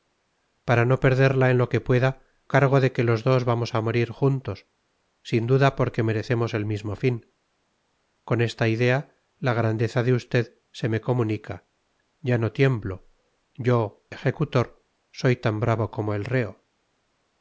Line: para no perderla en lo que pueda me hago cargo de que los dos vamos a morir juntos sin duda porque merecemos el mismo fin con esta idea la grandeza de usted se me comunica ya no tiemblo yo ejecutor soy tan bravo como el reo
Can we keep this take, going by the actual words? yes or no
no